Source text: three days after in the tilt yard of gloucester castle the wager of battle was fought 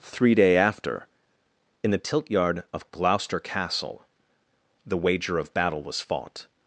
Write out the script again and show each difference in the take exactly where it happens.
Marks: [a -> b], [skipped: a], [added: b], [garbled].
three [days -> day] after in the tilt yard of gloucester castle the wager of battle was fought